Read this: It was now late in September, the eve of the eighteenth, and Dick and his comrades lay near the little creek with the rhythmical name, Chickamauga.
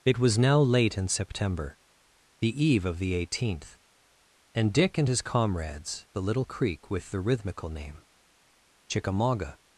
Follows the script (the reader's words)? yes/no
no